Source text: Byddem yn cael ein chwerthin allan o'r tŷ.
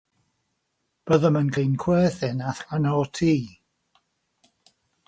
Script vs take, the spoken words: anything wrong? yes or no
yes